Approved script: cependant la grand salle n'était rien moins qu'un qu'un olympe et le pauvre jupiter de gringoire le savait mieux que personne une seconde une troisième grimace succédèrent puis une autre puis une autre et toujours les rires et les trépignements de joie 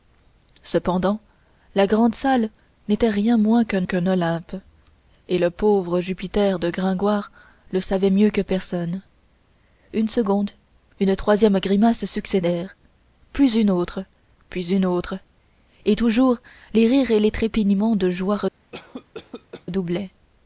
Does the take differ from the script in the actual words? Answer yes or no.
no